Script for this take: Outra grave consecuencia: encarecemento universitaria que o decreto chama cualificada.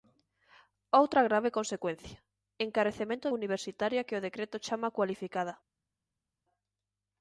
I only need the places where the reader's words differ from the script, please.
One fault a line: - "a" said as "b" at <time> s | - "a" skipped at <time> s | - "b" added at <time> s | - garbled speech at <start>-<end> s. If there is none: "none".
none